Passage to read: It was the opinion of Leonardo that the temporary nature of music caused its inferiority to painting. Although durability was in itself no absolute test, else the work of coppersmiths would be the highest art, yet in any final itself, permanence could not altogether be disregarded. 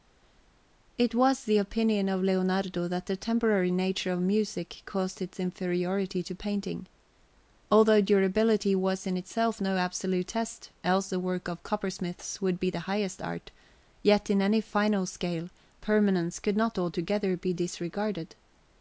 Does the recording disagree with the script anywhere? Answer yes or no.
yes